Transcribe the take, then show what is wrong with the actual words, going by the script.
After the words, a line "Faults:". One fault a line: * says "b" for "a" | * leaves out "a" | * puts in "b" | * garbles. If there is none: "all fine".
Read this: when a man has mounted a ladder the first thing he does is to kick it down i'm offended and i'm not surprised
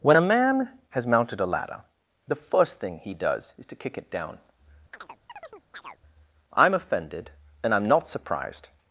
when a man has mounted a ladder the first thing he does is to kick it down i'm offended and i'm not surprised
Faults:
all fine